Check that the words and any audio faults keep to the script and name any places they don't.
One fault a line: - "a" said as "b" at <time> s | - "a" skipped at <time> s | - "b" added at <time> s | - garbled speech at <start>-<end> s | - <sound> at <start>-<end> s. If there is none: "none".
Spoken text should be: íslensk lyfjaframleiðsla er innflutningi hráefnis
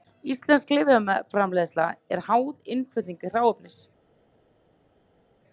- "háð" added at 2.3 s